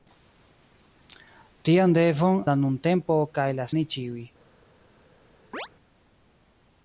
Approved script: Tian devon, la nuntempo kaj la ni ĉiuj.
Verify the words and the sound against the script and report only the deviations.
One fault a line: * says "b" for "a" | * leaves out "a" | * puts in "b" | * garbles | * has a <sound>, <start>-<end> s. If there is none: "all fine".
* has a chirp, 5.5-5.7 s